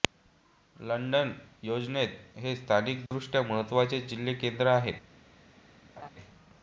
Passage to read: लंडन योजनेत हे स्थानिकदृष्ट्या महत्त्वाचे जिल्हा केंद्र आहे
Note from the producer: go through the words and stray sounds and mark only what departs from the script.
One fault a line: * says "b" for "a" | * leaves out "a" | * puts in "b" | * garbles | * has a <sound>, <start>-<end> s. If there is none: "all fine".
* has a dropout, 3.1-3.1 s
* has a laugh, 6.0-6.1 s